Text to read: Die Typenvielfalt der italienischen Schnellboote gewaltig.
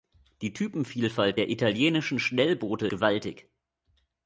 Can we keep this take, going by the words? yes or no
yes